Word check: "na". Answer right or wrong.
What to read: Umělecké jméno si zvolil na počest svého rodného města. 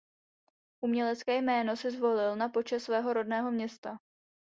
right